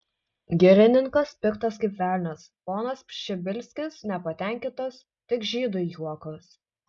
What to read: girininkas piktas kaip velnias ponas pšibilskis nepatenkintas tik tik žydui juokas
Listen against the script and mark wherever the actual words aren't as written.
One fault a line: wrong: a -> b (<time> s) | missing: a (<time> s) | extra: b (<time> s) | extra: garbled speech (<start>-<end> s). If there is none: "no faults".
missing: tik (5.5 s)